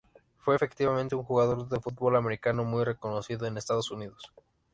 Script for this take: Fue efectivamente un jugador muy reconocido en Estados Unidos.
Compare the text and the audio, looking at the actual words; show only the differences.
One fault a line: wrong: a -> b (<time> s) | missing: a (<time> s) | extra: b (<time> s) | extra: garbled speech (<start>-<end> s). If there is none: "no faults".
extra: de fútbol americano (1.7 s)